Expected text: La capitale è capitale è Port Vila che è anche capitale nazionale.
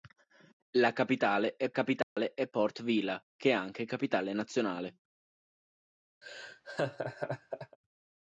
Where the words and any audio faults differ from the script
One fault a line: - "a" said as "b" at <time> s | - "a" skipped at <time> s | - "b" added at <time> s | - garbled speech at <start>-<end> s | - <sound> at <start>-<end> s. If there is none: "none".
- dropout at 2.0-2.2 s
- laugh at 6.2-7.8 s